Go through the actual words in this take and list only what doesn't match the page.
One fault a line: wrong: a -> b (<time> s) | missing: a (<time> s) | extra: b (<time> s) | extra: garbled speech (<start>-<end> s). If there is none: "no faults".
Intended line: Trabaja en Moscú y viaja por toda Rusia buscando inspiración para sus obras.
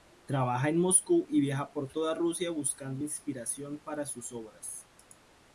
no faults